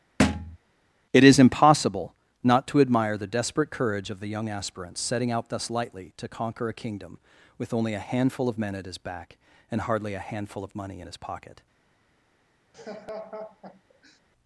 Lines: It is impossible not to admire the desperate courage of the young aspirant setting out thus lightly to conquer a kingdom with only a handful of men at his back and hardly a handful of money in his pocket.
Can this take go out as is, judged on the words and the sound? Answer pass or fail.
fail